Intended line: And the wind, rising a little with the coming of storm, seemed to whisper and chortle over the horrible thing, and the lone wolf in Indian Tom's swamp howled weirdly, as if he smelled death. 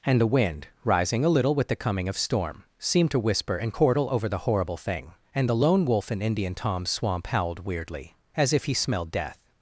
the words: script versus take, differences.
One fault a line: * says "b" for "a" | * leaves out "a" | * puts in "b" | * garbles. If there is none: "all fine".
all fine